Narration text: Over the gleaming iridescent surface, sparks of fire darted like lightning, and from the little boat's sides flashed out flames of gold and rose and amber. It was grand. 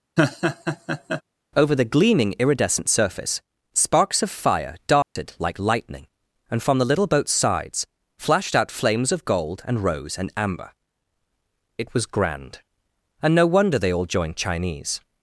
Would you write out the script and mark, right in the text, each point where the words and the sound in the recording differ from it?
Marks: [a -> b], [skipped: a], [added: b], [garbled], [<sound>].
[laugh] Over the gleaming iridescent surface, sparks of fire darted [dropout] like lightning, and from the little boat's sides flashed out flames of gold and rose and amber. It was grand. [added: And no wonder they all joined Chinese]